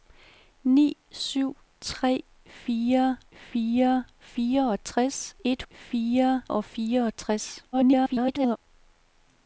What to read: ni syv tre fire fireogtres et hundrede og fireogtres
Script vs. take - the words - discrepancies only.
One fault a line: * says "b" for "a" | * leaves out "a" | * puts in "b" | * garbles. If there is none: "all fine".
* puts in "fire"
* says "fire" for "hundrede"
* garbles